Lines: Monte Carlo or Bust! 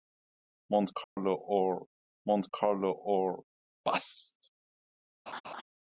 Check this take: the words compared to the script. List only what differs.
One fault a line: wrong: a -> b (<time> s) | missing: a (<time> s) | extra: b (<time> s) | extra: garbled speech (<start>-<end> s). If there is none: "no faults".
extra: monte Carlo or (2.3 s)